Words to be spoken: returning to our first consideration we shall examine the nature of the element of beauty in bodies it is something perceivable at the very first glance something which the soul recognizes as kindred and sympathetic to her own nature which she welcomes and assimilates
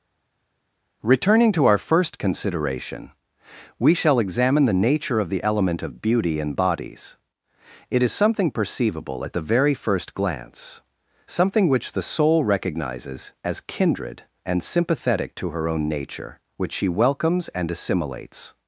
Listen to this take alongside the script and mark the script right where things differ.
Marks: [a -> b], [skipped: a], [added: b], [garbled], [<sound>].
returning to our first consideration we shall examine the nature of the element of beauty in bodies it is something perceivable at the very first glance something which the soul recognizes as kindred and sympathetic to her own nature which she welcomes and assimilates